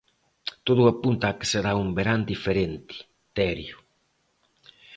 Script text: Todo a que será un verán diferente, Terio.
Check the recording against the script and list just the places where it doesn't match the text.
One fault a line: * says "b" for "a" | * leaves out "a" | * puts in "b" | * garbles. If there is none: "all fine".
* puts in "apunta"